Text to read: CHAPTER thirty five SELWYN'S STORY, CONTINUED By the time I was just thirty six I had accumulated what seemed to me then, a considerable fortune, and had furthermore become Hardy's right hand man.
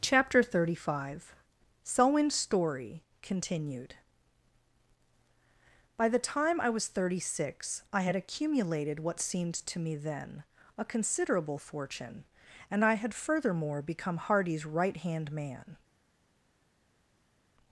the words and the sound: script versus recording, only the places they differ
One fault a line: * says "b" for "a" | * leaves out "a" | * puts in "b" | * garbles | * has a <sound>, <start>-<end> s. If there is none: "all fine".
* leaves out "just"
* puts in "I"